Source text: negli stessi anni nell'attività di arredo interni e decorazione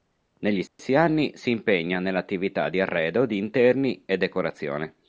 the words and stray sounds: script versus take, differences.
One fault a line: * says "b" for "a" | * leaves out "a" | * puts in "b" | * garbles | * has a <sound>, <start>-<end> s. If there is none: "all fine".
* has a dropout, 0.7-0.8 s
* puts in "si impegna"
* puts in "di"